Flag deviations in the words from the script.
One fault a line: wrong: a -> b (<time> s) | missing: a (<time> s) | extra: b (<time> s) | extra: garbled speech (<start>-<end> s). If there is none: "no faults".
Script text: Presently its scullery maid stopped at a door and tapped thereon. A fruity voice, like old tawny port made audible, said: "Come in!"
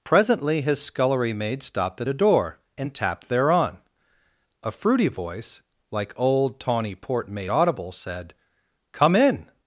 wrong: its -> his (0.6 s)